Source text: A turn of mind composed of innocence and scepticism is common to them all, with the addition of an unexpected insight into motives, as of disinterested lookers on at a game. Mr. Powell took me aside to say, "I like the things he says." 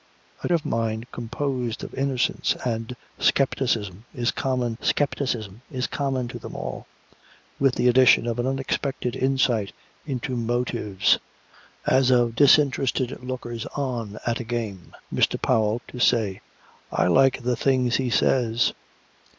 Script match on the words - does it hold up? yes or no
no